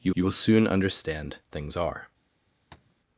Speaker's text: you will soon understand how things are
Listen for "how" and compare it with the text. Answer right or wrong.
wrong